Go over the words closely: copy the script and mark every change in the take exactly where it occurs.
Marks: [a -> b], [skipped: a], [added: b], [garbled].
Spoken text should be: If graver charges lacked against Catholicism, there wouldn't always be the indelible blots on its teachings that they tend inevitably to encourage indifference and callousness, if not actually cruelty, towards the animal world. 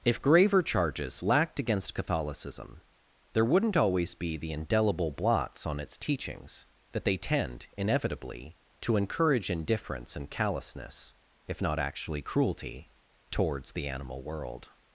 If graver charges lacked against Catholicism, there wouldn't always be the indelible blots on its teachings that they tend inevitably to encourage indifference and callousness, if not actually cruelty, towards the animal world.